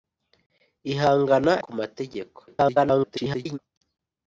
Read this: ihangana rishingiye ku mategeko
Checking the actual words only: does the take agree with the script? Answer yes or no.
no